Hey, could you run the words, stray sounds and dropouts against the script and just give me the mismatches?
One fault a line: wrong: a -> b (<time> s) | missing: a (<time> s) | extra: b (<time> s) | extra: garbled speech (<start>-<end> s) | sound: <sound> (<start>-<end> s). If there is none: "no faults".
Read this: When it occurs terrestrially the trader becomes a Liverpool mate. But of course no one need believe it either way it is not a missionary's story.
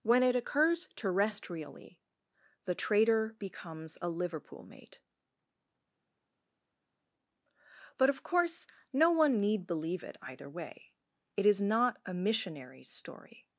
no faults